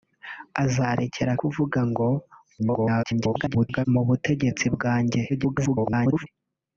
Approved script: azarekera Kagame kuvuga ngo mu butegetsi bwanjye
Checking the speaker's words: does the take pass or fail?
fail